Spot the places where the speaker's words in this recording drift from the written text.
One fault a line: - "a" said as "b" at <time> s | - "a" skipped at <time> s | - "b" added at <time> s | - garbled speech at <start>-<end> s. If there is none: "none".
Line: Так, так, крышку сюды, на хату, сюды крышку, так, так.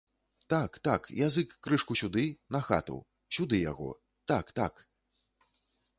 - "язык" added at 1.1 s
- "крышку" said as "яго" at 3.6 s